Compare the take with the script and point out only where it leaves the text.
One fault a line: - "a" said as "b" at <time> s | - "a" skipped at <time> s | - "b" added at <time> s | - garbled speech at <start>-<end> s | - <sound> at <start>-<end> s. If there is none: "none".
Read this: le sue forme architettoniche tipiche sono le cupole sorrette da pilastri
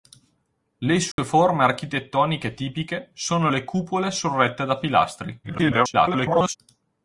- dropout at 1.1-1.2 s
- garbled speech at 5.4-6.6 s